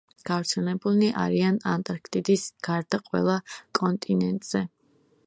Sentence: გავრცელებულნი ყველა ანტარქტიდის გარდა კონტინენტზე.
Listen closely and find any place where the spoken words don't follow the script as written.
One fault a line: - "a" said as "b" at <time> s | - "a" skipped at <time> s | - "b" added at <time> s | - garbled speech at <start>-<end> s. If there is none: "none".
- "ყველა" said as "არიან" at 1.2 s
- "ყველა" added at 3.1 s